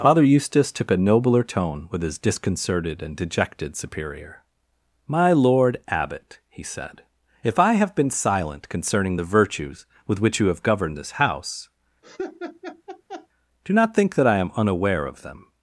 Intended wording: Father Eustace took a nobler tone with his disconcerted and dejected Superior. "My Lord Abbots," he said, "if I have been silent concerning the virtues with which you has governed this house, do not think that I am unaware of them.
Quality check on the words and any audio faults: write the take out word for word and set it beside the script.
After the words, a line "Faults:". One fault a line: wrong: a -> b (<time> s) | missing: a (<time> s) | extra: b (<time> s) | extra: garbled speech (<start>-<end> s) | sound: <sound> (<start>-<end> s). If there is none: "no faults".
Father Eustace took a nobler tone with his disconcerted and dejected Superior. "My Lord Abbot," he said, "if I have been silent concerning the virtues with which you have governed this house, do not think that I am unaware of them.
Faults:
wrong: Abbots -> Abbot (5.9 s)
wrong: has -> have (10.5 s)
sound: laugh (12.0-13.3 s)